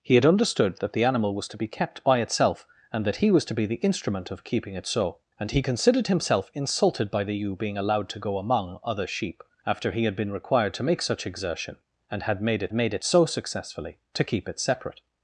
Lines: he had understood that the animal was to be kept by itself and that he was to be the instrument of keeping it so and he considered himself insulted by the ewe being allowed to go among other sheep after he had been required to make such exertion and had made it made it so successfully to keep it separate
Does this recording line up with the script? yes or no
yes